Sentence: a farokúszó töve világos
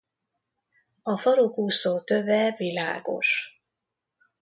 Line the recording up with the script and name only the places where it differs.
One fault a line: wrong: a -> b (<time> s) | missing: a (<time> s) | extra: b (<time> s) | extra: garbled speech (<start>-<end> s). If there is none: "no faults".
no faults